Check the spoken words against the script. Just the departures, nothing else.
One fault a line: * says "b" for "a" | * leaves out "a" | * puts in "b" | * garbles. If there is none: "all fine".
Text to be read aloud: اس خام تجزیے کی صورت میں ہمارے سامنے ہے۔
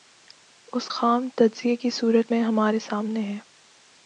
all fine